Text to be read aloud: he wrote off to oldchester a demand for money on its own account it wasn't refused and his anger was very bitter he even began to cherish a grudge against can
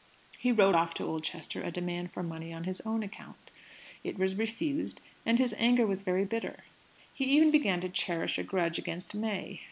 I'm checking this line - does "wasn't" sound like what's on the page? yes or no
no